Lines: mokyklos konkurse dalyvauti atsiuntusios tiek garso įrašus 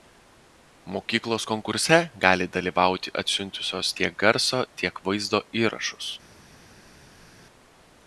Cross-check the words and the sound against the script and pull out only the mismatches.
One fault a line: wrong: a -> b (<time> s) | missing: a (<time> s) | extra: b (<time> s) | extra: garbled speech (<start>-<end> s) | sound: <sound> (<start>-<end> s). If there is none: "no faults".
extra: gali (2.2 s)
extra: tiek vaizdo (4.8 s)